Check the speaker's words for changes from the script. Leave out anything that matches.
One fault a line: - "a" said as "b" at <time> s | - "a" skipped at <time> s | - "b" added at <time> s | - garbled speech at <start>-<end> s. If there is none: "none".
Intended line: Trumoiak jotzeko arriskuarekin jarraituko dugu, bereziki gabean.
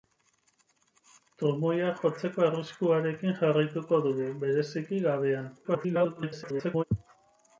- garbled speech at 5.6-6.8 s